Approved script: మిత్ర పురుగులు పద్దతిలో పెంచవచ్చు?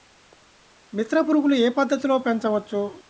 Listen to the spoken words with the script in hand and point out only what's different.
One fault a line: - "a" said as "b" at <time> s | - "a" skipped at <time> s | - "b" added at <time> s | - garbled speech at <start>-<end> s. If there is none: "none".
- "ఏ" added at 1.5 s